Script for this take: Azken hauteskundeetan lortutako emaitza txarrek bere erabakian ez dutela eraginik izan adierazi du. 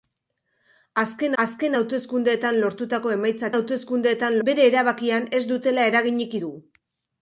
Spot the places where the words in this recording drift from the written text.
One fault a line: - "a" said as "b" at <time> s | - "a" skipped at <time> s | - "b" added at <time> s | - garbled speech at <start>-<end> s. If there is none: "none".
- "azken" added at 1.4 s
- "txarrek" said as "hauteskundeetan" at 3.6 s
- "izan adierazi" skipped at 6.4 s